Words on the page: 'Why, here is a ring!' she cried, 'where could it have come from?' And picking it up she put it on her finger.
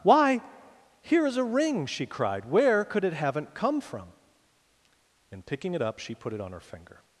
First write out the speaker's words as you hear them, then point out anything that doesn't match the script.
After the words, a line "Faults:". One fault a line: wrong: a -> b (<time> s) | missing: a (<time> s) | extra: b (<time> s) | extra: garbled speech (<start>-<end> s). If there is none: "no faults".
'Why, here is a ring!' she cried, 'where could it haven't come from?' And picking it up she put it on her finger.
Faults:
wrong: have -> haven't (3.1 s)